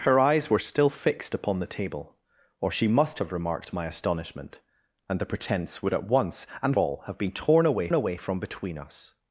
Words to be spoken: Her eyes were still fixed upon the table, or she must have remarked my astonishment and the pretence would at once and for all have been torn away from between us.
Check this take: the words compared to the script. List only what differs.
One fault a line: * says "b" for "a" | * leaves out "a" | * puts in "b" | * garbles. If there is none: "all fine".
* leaves out "for"
* puts in "away"